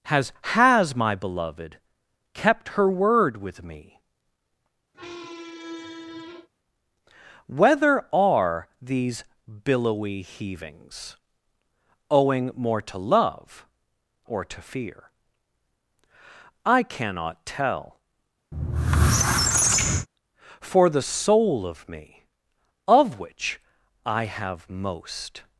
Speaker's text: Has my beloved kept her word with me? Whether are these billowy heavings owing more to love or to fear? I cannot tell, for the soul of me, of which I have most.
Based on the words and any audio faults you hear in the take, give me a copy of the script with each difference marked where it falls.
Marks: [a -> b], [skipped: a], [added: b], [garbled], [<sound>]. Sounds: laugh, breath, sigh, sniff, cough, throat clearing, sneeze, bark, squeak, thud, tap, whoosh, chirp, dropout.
Has [added: has] my beloved kept her word with me? [squeak] Whether are these billowy heavings owing more to love or to fear? I cannot tell, [squeak] for the soul of me, of which I have most.